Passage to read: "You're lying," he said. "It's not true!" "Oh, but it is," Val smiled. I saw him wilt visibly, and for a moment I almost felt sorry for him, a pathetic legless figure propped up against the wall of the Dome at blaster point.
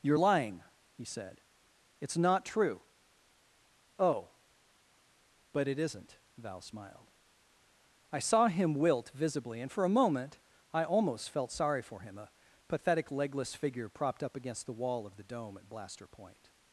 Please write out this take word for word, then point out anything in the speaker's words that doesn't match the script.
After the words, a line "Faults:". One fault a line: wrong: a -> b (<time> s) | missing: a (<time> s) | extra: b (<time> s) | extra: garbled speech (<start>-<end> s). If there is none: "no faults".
"You're lying," he said. "It's not true!" "Oh, but it isn't," Val smiled. I saw him wilt visibly, and for a moment I almost felt sorry for him, a pathetic legless figure propped up against the wall of the Dome at blaster point.
Faults:
wrong: is -> isn't (5.8 s)